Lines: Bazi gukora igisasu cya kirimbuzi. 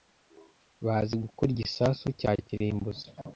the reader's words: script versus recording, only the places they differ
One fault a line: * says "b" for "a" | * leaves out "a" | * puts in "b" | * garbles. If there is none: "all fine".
all fine